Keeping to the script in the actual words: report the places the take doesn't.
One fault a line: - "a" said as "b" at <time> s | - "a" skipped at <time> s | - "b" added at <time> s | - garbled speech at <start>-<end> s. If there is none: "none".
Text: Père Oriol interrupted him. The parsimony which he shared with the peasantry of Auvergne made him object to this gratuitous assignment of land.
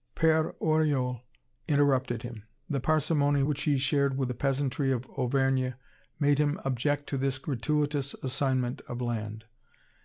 none